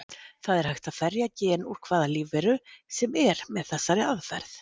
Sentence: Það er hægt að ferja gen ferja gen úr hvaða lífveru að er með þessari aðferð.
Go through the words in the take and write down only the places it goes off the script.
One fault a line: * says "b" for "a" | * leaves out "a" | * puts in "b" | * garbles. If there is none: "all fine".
* leaves out "ferja gen"
* says "sem" for "að"